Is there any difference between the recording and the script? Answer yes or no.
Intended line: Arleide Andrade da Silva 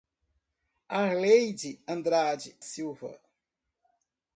yes